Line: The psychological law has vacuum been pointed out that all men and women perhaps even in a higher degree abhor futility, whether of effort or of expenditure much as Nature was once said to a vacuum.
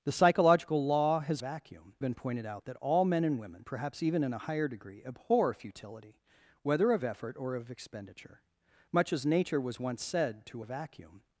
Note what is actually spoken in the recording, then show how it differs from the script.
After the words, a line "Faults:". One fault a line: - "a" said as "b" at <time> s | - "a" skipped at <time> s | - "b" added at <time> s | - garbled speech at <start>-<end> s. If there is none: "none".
The psychological law has vacuum been pointed out that all men and women perhaps even in a higher degree abhor futility, whether of effort or of expenditure much as Nature was once said to a vacuum.
Faults:
none